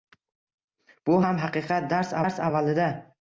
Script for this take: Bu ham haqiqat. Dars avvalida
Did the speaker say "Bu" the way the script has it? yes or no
yes